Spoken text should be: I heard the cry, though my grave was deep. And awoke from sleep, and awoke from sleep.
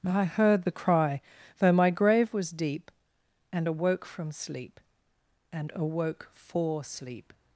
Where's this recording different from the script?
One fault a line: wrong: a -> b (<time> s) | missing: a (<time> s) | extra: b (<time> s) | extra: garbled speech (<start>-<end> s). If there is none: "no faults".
wrong: from -> for (6.3 s)